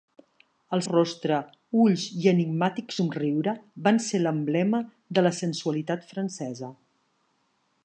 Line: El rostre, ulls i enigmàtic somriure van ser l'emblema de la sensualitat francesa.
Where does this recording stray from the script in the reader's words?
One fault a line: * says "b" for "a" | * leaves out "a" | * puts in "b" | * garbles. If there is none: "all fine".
all fine